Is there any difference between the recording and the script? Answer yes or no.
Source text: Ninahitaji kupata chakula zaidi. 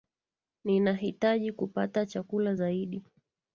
no